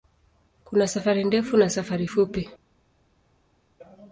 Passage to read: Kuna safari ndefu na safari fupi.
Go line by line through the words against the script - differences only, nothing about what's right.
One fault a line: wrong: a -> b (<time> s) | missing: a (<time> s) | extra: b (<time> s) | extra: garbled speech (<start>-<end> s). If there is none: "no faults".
no faults